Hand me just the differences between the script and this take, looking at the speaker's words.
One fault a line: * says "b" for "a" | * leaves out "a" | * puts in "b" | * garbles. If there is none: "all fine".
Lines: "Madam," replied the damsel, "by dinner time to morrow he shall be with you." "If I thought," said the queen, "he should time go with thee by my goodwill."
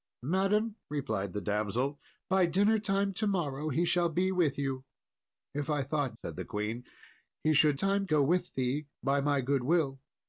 all fine